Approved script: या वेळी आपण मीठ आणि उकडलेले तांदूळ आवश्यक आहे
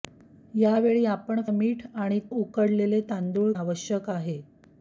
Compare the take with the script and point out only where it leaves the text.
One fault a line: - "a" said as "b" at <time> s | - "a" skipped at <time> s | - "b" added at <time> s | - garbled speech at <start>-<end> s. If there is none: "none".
none